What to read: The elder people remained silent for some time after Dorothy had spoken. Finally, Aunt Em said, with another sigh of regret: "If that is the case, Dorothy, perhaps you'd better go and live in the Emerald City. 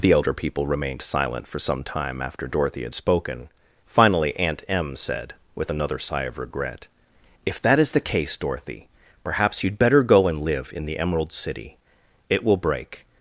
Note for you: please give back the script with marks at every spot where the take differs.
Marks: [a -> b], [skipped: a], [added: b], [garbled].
The elder people remained silent for some time after Dorothy had spoken. Finally, Aunt Em said, with another sigh of regret: "If that is the case, Dorothy, perhaps you'd better go and live in the Emerald City. [added: It will break]